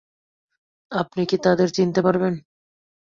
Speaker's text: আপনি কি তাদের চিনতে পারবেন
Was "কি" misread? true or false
false